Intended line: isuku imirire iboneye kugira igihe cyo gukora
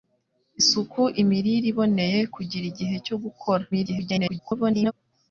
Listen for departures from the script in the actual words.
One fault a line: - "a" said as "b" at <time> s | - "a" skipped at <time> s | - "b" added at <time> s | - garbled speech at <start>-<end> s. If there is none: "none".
- garbled speech at 3.7-4.9 s